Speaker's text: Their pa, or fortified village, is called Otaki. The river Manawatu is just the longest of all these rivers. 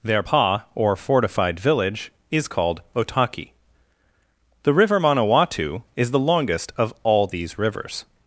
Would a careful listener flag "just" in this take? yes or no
yes